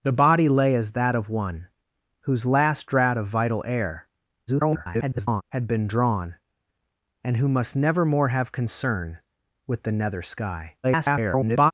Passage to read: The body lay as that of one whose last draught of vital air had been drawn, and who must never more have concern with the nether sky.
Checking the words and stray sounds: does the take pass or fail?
fail